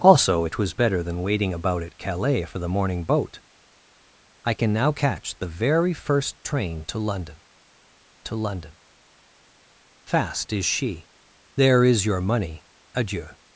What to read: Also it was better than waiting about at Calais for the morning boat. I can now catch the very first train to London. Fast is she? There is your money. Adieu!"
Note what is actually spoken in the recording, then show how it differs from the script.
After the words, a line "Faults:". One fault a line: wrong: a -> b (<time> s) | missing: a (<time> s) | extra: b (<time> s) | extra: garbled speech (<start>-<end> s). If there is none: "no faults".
Also it was better than waiting about at Calais for the morning boat. I can now catch the very first train to London to London. Fast is she? There is your money. Adieu!"
Faults:
extra: to London (8.2 s)